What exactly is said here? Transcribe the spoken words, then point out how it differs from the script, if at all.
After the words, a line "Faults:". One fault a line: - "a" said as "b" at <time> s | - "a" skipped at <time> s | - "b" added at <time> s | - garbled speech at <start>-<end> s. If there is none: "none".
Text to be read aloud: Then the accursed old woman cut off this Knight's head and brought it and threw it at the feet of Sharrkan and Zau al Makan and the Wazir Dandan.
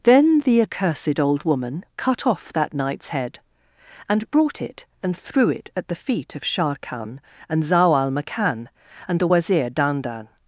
Then the accursed old woman cut off that Knight's head and brought it and threw it at the feet of Sharrkan and Zau al Makan and the Wazir Dandan.
Faults:
- "this" said as "that" at 2.5 s